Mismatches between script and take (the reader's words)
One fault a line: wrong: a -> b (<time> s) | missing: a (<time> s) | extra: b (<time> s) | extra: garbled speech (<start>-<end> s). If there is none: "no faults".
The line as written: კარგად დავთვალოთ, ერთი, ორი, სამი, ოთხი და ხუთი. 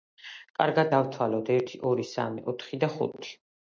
no faults